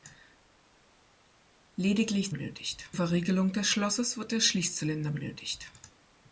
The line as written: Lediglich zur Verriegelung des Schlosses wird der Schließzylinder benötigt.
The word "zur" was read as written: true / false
false